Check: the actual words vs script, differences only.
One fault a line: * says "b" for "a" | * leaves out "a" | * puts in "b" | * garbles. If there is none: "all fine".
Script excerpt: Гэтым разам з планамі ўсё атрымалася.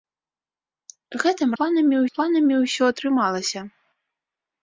* says "планамі" for "разам"